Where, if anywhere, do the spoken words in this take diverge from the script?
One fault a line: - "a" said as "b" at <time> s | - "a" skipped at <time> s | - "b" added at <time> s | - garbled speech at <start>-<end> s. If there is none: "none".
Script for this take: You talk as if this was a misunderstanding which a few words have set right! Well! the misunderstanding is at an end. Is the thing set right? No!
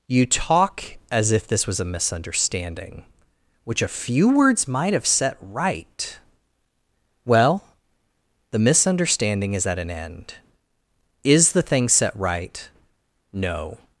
- "might" added at 4.7 s